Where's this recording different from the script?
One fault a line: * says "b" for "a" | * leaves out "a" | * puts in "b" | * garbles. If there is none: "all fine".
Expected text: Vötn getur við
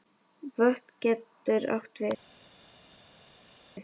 * puts in "átt"